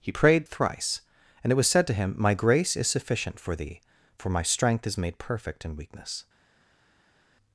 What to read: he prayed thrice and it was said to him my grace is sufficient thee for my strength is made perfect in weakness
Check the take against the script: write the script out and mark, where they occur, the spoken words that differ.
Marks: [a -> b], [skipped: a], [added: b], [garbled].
he prayed thrice and it was said to him my grace is sufficient [added: for] thee for my strength is made perfect in weakness